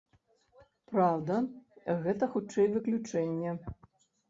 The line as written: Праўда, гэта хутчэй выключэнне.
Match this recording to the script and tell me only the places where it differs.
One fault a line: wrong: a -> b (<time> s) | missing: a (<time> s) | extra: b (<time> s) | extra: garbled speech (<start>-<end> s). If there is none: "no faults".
no faults